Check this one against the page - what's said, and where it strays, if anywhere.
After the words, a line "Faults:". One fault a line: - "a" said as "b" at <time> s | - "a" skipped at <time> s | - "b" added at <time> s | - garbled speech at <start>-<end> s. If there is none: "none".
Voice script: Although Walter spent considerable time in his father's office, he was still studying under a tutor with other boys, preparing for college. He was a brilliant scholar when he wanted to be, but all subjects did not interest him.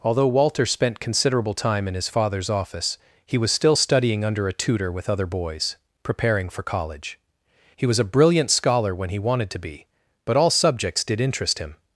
Although Walter spent considerable time in his father's office, he was still studying under a tutor with other boys, preparing for college. He was a brilliant scholar when he wanted to be, but all subjects did interest him.
Faults:
- "not" skipped at 11.2 s